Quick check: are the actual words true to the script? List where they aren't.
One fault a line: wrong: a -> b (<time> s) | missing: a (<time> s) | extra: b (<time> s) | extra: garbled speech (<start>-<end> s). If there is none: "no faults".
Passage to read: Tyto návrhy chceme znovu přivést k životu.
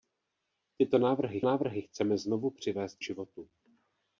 extra: návrhy (1.4 s)
missing: k (3.0 s)